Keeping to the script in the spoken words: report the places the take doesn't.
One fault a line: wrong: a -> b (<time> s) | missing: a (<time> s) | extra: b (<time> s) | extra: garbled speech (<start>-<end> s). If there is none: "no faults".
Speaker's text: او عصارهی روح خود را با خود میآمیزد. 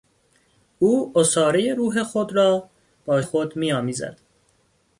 no faults